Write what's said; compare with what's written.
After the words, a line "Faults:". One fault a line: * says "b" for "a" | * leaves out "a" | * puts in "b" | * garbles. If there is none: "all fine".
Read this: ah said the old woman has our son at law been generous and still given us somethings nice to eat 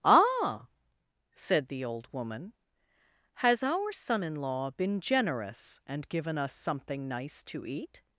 ah said the old woman has our son in law been generous and given us something nice to eat
Faults:
* says "in" for "at"
* leaves out "still"
* says "something" for "somethings"